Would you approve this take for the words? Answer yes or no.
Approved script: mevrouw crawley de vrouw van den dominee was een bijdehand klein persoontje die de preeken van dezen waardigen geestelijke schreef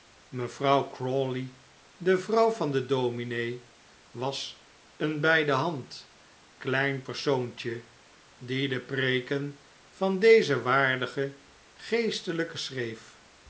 yes